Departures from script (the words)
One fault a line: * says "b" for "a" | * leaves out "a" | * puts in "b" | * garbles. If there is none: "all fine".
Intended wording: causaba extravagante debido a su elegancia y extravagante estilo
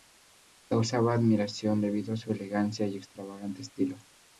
* says "admiración" for "extravagante"